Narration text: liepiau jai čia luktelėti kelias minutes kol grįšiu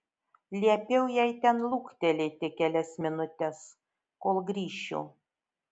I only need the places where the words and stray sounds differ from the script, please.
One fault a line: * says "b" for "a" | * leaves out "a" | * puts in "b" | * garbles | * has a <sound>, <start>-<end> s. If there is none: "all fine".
* says "ten" for "čia"